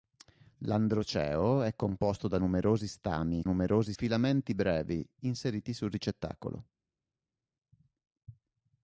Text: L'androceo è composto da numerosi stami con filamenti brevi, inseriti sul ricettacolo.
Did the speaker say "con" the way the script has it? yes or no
no